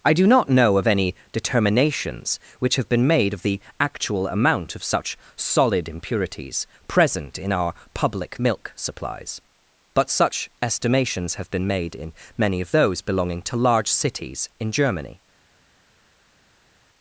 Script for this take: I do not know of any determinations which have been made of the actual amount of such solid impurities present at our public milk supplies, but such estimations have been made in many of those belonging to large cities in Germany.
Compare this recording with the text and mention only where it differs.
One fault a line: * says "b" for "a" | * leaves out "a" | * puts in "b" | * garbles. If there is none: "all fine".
* says "in" for "at"